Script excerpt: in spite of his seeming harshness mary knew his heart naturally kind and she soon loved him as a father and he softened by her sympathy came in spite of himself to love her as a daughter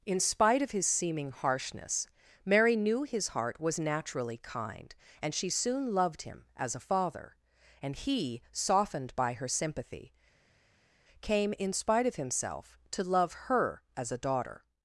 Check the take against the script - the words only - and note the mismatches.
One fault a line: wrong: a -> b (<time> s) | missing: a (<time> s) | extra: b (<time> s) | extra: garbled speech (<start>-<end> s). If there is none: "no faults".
extra: was (3.6 s)